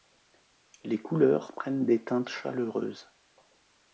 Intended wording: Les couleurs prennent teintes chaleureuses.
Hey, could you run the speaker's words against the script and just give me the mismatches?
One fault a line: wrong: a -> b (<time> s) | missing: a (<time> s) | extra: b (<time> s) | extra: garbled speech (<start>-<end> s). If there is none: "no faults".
extra: des (1.8 s)